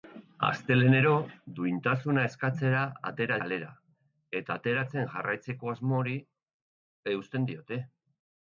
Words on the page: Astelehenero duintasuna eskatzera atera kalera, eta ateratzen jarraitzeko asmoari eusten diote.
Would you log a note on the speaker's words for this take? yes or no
no